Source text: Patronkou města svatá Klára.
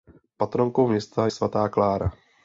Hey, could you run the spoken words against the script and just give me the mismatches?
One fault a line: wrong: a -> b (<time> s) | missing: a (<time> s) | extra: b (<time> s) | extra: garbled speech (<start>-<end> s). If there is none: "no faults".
no faults